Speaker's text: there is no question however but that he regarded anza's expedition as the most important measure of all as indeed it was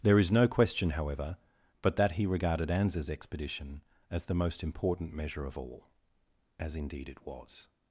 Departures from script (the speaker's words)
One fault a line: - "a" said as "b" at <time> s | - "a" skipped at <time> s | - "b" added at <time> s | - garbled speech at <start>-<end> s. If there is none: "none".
none